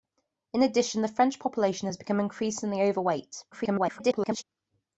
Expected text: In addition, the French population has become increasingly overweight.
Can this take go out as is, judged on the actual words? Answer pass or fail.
fail